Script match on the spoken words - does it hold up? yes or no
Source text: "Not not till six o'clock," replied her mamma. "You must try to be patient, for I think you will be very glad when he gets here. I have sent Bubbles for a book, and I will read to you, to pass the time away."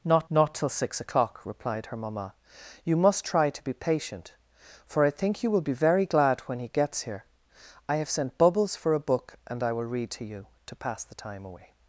yes